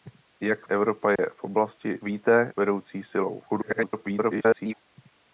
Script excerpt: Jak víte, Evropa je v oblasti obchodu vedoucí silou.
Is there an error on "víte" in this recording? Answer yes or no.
yes